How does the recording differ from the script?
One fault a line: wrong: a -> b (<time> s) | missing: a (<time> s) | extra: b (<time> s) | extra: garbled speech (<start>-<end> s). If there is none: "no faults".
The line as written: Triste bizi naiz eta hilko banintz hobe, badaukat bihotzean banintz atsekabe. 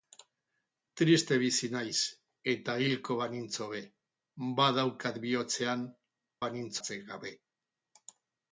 no faults